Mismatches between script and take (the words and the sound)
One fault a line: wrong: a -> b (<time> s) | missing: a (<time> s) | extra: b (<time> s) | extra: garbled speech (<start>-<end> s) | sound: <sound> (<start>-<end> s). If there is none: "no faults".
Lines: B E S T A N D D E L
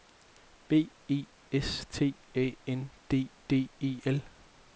no faults